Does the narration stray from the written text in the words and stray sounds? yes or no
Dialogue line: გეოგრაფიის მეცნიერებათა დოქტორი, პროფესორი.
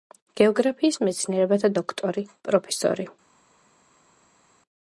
no